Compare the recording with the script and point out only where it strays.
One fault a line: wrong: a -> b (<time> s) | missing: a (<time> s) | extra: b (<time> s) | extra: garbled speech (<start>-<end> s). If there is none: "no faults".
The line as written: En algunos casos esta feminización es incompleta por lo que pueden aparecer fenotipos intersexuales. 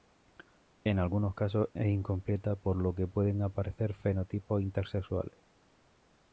missing: esta feminización (1.7 s)